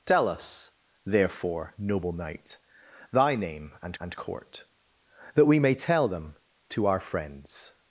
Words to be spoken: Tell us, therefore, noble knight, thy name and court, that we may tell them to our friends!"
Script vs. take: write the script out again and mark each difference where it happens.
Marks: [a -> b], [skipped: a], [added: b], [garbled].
Tell us, therefore, noble knight, thy name and [added: and] court, that we may tell them to our friends!"